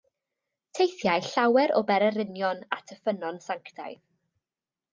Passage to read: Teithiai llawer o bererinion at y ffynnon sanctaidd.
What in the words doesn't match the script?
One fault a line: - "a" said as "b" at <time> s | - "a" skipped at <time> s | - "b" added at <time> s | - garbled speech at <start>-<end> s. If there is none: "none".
none